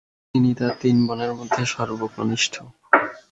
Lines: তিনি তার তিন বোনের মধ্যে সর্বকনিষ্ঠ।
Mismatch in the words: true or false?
false